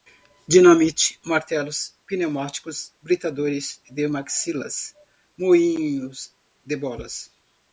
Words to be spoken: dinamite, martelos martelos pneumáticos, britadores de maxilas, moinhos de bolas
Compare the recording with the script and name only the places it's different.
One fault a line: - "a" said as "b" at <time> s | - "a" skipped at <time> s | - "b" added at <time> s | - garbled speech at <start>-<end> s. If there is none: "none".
- "martelos" skipped at 1.9 s